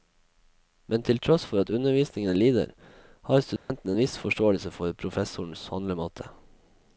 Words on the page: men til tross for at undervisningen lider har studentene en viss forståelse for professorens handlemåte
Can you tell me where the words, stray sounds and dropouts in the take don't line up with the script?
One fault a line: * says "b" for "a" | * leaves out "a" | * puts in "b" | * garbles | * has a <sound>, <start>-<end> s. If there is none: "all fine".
* has a dropout, 3.6-3.7 s